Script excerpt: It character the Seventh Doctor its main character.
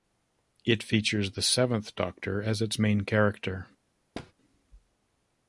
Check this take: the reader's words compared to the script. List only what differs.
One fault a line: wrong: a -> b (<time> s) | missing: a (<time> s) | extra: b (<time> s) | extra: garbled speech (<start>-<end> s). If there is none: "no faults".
wrong: character -> features (0.8 s)
extra: as (2.4 s)